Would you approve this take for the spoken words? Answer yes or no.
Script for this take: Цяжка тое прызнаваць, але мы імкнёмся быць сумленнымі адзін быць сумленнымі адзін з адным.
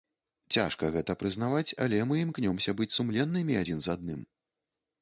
no